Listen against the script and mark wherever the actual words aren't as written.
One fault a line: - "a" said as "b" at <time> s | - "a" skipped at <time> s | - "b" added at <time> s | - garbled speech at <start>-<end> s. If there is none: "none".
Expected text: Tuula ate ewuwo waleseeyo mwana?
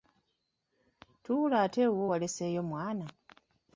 none